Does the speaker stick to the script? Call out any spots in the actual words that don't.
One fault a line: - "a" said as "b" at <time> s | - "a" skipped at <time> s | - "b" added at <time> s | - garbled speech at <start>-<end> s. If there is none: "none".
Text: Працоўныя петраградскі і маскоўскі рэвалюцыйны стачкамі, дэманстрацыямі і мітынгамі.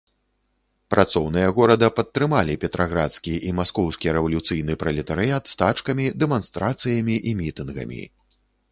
- "горада падтрымалі" added at 1.6 s
- "пралетарыят" added at 4.9 s